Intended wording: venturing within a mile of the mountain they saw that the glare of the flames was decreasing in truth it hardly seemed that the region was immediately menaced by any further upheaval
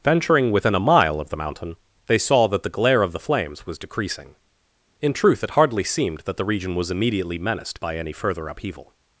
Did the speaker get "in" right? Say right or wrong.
right